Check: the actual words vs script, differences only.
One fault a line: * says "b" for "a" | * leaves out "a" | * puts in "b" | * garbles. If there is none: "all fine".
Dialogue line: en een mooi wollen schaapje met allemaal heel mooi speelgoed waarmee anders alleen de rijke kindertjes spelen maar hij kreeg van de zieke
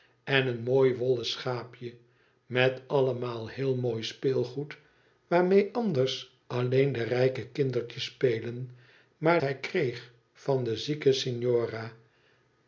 all fine